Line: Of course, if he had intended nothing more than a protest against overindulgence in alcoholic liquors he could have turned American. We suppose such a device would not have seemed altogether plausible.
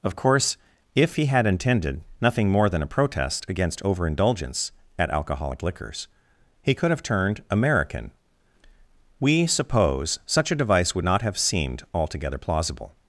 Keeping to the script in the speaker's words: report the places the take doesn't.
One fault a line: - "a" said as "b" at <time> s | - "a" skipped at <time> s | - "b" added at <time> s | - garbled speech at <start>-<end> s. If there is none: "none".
- "in" said as "at" at 5.0 s